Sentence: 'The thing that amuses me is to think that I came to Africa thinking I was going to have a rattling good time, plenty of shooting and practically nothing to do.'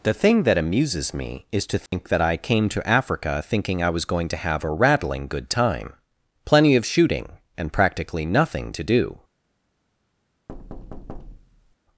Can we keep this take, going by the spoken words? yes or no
yes